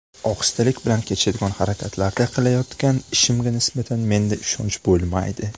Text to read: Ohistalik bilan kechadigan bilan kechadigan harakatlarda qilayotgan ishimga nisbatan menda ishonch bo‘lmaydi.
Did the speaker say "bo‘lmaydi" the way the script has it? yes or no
yes